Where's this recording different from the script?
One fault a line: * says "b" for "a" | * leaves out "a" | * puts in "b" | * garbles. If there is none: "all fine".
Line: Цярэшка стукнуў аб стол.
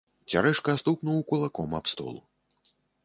* puts in "кулаком"